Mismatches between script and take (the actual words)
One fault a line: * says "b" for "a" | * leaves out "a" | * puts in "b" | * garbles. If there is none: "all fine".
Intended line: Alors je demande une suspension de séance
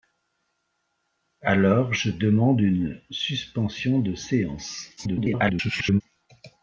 * garbles